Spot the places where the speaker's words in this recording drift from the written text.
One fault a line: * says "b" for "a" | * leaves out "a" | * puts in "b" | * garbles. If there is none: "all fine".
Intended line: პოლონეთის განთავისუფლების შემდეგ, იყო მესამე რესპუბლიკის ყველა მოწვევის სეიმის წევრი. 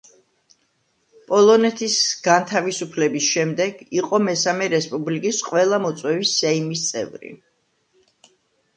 all fine